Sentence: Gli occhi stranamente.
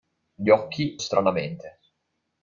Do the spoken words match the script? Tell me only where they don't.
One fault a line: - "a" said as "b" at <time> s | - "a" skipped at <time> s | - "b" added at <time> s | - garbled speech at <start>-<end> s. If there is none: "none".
none